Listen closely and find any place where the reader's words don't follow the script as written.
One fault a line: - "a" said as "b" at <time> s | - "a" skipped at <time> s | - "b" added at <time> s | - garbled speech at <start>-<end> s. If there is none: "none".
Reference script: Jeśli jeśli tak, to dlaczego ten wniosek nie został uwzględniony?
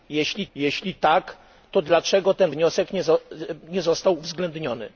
none